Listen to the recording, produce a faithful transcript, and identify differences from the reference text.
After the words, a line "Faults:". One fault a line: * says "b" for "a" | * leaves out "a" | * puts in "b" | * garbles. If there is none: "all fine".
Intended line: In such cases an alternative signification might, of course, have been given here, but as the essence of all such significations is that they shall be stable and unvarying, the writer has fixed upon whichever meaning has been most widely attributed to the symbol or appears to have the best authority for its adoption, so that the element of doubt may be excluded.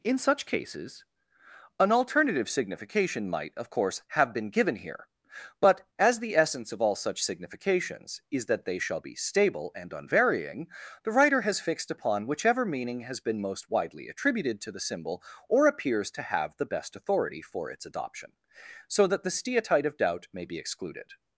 In such cases an alternative signification might, of course, have been given here, but as the essence of all such significations is that they shall be stable and unvarying, the writer has fixed upon whichever meaning has been most widely attributed to the symbol or appears to have the best authority for its adoption, so that the steatite of doubt may be excluded.
Faults:
* says "steatite" for "element"